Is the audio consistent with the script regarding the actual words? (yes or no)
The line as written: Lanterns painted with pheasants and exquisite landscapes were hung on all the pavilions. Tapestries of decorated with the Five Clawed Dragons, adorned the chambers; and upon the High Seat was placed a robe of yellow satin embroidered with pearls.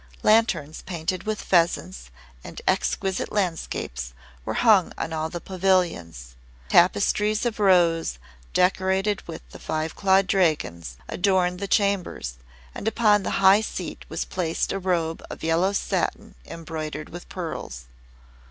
no